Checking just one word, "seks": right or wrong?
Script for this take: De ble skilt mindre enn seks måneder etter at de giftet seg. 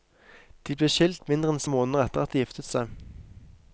wrong